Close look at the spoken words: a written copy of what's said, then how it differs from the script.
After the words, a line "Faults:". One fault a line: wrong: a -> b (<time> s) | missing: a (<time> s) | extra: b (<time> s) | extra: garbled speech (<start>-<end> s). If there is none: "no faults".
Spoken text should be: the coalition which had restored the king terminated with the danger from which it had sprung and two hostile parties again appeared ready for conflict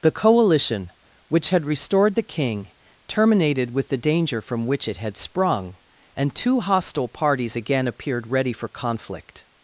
the coalition which had restored the king terminated with the danger from which it had sprung and two hostile parties again appeared ready for conflict
Faults:
no faults